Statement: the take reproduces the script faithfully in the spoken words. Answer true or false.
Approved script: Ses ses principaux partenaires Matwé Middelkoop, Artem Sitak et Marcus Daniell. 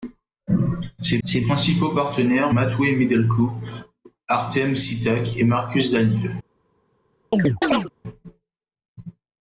true